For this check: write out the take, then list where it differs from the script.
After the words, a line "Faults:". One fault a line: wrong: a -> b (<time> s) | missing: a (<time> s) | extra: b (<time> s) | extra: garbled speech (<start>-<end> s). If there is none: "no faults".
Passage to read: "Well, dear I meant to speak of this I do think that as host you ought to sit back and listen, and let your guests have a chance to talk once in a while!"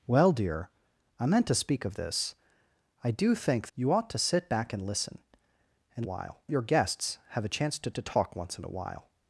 "Well, dear I meant to speak of this I do think you ought to sit back and listen, and while your guests have a chance to to talk once in a while!"
Faults:
missing: that as host (3.7 s)
wrong: let -> while (6.0 s)
extra: to (7.9 s)